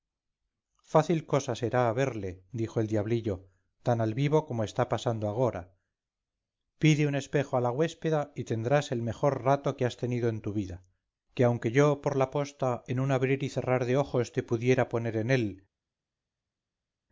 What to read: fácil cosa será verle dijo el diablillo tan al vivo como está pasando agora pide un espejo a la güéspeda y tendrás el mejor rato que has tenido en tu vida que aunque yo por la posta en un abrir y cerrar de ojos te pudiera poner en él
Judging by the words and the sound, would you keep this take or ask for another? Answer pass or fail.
pass